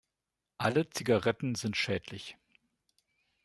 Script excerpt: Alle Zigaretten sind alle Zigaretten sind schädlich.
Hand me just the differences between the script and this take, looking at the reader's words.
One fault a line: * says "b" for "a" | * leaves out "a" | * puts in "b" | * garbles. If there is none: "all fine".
* leaves out "alle Zigaretten sind"